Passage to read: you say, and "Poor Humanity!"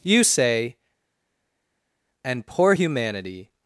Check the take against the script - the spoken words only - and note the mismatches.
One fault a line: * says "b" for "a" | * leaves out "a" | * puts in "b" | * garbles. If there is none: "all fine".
all fine